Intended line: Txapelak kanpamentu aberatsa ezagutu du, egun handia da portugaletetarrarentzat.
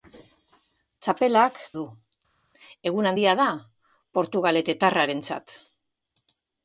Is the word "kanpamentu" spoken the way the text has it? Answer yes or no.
no